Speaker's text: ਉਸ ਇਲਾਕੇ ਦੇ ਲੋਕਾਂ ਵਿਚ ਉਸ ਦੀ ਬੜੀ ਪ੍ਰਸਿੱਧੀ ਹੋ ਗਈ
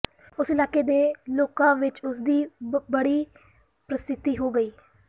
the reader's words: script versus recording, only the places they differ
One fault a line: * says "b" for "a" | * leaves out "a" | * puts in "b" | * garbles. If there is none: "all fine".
all fine